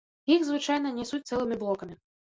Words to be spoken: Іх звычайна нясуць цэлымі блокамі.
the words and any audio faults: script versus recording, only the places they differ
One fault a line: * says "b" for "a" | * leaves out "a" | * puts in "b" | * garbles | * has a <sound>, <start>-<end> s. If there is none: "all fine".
all fine